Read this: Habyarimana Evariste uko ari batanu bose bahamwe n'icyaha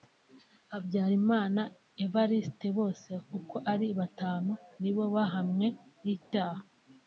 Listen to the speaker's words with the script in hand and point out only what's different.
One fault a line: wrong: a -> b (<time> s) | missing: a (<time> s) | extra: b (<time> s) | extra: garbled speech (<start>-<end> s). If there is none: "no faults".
extra: bose (2.8 s)
wrong: bose -> nibo (4.8 s)